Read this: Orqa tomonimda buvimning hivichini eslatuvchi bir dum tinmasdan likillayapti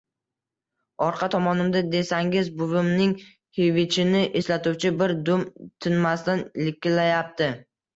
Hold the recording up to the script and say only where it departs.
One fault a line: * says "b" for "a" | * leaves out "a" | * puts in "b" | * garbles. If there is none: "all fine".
* puts in "desangiz"